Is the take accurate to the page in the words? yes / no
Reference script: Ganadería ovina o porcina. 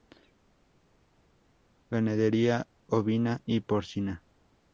no